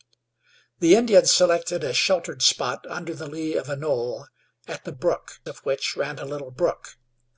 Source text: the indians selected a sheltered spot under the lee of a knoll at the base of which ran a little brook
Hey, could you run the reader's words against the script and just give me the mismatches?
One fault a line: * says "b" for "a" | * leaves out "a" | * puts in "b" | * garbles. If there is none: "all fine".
* says "brook" for "base"